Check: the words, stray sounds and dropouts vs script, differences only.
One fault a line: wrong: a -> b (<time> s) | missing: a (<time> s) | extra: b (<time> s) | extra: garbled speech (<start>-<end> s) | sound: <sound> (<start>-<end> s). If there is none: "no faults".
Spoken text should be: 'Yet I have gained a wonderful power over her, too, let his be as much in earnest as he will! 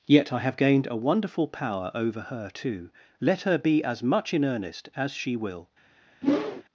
wrong: his -> her (3.4 s)
wrong: he -> she (5.1 s)
sound: whoosh (6.2-6.6 s)